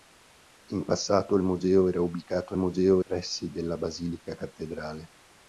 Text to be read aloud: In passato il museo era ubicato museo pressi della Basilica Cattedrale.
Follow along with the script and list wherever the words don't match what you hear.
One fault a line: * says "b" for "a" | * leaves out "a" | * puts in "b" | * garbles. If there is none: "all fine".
all fine